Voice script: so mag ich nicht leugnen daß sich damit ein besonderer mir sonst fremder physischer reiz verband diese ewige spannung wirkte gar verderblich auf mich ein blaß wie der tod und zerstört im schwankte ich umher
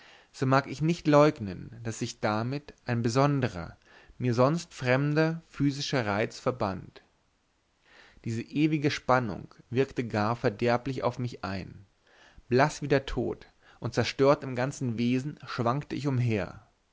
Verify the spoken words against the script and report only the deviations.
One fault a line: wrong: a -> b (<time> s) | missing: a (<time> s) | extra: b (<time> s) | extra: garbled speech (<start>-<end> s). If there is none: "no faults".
extra: ganzen wesen (14.6 s)